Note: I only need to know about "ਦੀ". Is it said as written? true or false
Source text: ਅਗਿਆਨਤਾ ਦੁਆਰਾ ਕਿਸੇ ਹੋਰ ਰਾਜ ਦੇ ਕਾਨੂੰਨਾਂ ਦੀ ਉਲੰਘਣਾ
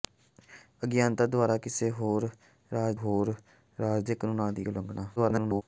true